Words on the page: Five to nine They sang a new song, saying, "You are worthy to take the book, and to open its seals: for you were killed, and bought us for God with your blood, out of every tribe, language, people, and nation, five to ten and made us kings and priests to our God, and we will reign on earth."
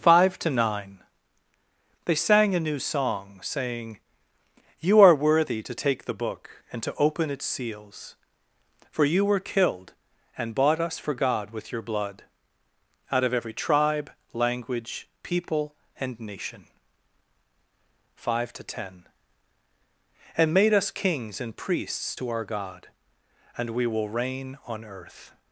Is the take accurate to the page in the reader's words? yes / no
yes